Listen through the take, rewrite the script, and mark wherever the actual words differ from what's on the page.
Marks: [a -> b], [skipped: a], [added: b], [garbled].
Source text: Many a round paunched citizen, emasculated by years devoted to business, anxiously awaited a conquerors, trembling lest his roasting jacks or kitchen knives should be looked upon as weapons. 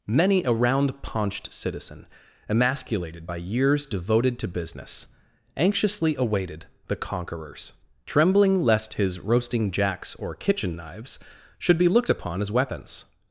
Many a round paunched citizen, emasculated by years devoted to business, anxiously awaited [a -> the] conquerors, trembling lest his roasting jacks or kitchen knives should be looked upon as weapons.